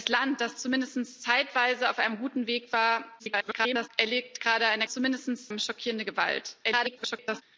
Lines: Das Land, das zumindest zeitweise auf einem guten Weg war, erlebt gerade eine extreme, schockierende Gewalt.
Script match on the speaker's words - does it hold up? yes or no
no